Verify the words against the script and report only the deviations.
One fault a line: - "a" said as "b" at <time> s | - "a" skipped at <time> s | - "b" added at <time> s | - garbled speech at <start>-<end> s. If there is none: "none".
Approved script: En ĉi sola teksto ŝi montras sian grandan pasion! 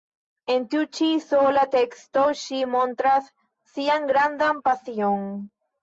- "tiu" added at 0.7 s